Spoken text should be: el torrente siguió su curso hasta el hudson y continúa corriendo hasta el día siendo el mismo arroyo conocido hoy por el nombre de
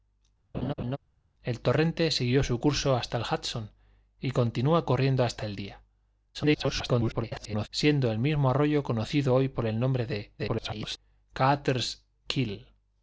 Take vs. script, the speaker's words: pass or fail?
fail